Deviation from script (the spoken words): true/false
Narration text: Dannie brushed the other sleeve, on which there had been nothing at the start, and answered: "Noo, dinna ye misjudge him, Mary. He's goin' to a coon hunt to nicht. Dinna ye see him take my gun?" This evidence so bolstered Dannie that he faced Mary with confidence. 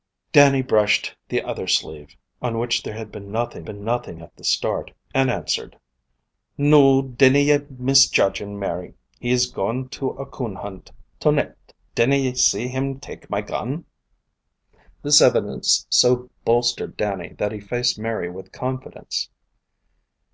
true